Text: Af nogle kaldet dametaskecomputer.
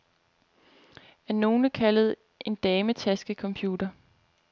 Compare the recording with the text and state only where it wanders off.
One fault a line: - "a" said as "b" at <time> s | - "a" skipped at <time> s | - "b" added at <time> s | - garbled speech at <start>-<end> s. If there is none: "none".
- "en" added at 2.4 s